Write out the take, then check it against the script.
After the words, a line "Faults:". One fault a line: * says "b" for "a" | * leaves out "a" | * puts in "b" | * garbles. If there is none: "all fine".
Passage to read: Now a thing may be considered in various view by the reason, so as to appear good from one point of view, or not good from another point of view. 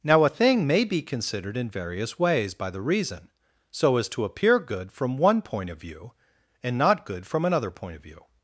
Now a thing may be considered in various ways by the reason, so as to appear good from one point of view, and not good from another point of view.
Faults:
* says "ways" for "view"
* says "and" for "or"